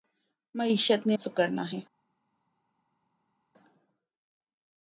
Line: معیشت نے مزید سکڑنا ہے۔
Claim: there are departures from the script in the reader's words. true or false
true